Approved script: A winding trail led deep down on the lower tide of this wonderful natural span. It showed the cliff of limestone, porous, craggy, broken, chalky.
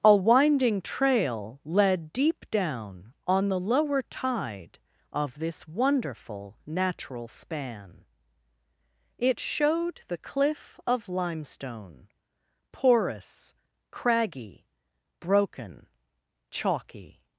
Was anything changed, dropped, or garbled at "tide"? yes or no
no